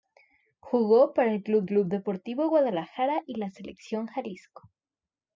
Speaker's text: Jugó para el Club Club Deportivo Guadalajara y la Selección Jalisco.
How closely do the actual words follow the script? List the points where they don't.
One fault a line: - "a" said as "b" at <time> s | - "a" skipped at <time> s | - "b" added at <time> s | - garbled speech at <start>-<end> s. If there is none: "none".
none